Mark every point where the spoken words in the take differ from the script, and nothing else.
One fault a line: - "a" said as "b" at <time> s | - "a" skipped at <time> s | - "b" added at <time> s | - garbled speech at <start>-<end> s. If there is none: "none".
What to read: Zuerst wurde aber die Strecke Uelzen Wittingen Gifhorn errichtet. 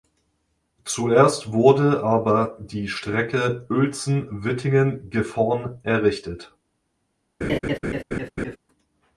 none